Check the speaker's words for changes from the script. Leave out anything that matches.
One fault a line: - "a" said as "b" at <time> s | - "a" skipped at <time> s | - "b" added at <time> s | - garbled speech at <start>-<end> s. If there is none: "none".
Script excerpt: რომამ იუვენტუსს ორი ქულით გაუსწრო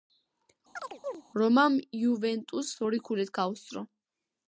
none